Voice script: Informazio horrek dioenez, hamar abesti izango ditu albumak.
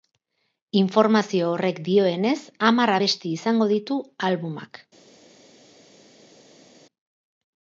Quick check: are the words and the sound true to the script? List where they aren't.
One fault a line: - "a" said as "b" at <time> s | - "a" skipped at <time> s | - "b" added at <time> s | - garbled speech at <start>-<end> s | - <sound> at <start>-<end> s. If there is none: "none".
none